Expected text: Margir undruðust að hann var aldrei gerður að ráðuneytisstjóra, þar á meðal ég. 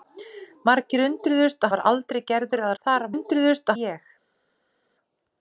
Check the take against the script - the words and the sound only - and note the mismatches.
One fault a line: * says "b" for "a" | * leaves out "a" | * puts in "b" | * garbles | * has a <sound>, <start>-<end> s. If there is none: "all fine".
* leaves out "hann"
* leaves out "ráðuneytisstjóra"
* says "undruðust" for "meðal"